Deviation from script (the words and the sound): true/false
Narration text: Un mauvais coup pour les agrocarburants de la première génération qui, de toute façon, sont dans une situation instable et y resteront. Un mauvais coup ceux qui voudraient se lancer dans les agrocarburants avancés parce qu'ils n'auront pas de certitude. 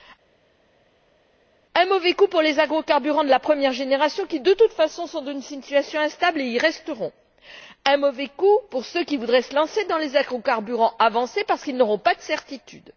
true